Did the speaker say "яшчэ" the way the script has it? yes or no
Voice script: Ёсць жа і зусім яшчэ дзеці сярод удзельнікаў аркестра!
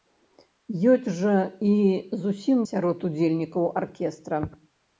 no